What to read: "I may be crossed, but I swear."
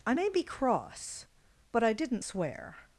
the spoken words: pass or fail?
fail